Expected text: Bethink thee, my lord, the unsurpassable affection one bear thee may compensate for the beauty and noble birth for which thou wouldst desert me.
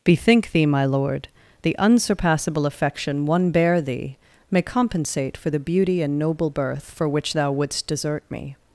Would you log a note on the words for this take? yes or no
no